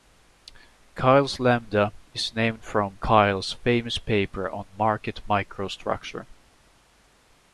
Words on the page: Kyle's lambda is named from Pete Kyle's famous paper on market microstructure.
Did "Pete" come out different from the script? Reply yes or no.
yes